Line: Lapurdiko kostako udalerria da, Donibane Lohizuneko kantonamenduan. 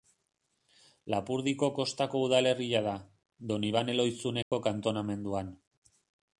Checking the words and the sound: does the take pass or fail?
fail